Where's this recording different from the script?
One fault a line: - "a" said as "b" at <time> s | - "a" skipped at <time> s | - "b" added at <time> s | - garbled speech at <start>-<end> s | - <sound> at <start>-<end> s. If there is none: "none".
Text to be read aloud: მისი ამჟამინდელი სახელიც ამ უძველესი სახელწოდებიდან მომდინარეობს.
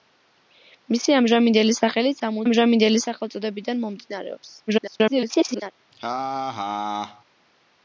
- "უძველესი" said as "ამჟამინდელი" at 2.4 s
- garbled speech at 4.7-5.7 s
- laugh at 5.9-7.2 s